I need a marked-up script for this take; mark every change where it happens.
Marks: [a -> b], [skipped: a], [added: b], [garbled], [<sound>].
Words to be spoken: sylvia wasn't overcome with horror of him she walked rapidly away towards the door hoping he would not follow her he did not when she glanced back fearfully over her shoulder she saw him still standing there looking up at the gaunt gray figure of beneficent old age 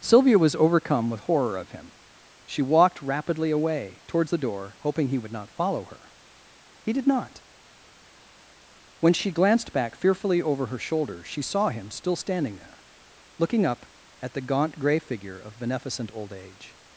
sylvia [wasn't -> was] overcome with horror of him she walked rapidly away towards the door hoping he would not follow her he did not when she glanced back fearfully over her shoulder she saw him still standing there looking up at the gaunt gray figure of beneficent old age